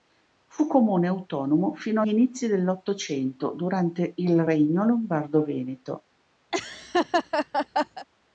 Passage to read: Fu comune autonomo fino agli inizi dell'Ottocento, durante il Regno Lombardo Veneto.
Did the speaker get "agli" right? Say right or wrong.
wrong